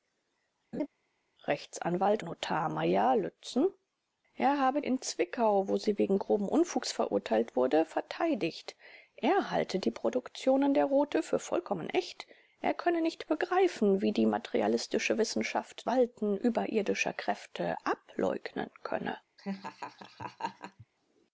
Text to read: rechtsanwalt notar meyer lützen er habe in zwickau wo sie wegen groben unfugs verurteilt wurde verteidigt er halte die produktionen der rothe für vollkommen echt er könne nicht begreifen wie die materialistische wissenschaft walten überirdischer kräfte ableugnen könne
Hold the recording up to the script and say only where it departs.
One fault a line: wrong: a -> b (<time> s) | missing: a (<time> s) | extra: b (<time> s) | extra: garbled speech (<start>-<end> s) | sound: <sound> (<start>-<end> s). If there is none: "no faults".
sound: laugh (0.7-0.9 s)
sound: laugh (19.4-20.9 s)